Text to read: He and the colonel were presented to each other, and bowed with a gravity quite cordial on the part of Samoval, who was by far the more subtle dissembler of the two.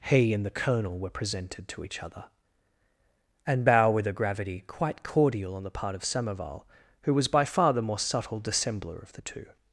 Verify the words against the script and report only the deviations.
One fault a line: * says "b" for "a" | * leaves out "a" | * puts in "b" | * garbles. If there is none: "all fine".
* says "bow" for "bowed"